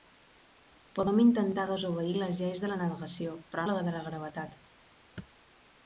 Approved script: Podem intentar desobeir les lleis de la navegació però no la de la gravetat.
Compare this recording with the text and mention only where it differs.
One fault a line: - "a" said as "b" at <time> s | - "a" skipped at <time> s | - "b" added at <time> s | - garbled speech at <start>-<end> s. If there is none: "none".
- "no" skipped at 3.6 s